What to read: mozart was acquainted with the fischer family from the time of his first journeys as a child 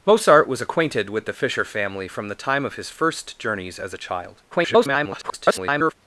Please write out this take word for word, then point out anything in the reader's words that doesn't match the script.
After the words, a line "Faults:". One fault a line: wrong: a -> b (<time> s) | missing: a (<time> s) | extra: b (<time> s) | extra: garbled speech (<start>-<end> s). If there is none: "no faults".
mozart was acquainted with the fischer family from the time of his first journeys as a child [garbled]
Faults:
extra: garbled speech (4.5-5.9 s)